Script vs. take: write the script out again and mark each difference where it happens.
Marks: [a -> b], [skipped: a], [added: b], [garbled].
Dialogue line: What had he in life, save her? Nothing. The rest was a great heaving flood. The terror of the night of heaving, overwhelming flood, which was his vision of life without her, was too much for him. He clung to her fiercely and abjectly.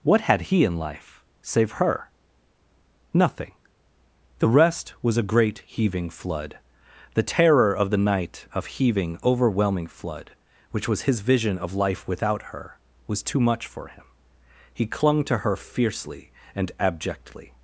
What had he in life, save her? Nothing. The rest was a great heaving flood. The terror of the night of heaving, overwhelming flood, which was his vision of life without her, was too much for him. He clung to her fiercely and abjectly.